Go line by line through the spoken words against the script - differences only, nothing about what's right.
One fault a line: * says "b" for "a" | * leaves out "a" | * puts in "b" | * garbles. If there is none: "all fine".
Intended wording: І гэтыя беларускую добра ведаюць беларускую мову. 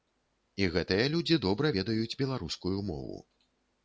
* says "людзі" for "беларускую"